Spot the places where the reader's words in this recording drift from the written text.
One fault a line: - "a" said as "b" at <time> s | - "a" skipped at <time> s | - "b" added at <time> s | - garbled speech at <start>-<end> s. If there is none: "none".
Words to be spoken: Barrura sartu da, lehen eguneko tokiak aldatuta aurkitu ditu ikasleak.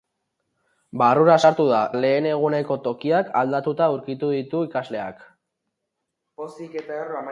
none